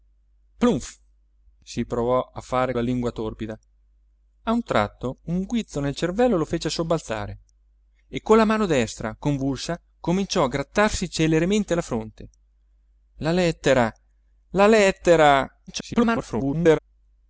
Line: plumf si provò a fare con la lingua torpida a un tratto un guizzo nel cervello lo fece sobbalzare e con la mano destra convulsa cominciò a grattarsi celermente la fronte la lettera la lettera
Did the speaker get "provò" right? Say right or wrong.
right